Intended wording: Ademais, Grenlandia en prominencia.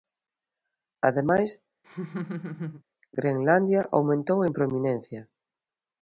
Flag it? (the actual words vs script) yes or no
yes